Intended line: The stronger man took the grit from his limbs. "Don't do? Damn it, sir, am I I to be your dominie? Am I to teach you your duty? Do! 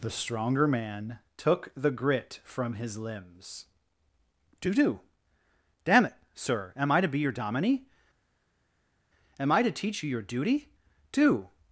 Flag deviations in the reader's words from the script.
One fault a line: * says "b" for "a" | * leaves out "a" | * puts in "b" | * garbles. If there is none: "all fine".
* says "Do" for "Don't"
* leaves out "I"